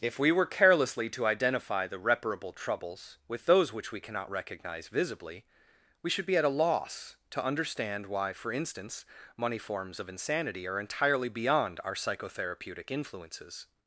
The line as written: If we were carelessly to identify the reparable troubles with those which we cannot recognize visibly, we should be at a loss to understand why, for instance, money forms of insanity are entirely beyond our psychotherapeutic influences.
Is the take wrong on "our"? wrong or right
right